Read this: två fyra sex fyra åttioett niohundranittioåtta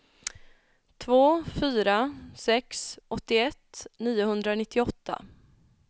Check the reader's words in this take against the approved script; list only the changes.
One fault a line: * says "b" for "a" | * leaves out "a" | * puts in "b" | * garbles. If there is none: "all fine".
* leaves out "fyra"